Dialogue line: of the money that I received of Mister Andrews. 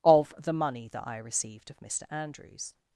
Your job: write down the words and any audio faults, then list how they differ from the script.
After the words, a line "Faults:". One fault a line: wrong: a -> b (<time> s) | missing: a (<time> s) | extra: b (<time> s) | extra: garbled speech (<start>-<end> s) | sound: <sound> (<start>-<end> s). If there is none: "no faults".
of the money that I received of Mister Andrews.
Faults:
no faults